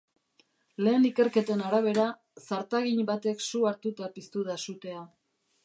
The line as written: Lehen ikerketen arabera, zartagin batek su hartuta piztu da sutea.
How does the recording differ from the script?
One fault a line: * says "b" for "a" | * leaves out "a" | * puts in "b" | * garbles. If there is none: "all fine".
all fine